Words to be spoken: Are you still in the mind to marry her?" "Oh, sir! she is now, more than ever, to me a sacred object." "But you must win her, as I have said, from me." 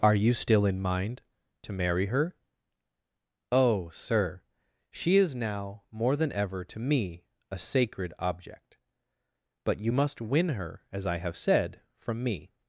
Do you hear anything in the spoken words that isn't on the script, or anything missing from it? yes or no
yes